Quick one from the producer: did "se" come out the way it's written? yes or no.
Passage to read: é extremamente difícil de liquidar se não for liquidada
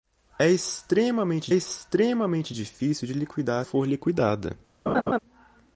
no